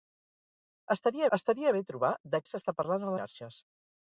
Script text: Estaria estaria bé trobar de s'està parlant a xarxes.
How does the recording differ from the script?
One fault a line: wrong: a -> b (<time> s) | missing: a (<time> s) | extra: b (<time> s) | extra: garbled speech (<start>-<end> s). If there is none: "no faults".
no faults